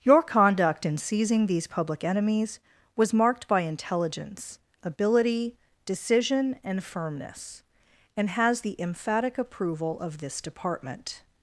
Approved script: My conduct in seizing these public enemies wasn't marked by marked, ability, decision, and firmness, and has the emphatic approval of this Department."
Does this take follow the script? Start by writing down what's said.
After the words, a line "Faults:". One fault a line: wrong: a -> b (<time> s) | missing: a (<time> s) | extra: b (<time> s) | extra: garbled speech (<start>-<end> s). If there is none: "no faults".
Your conduct in seizing these public enemies was marked by intelligence, ability, decision, and firmness, and has the emphatic approval of this Department."
Faults:
wrong: My -> Your (0.0 s)
wrong: wasn't -> was (3.0 s)
wrong: marked -> intelligence (3.6 s)